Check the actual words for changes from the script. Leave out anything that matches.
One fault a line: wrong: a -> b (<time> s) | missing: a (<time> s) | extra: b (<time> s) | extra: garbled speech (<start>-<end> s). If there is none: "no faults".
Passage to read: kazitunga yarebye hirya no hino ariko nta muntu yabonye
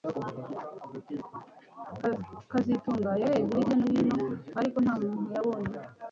no faults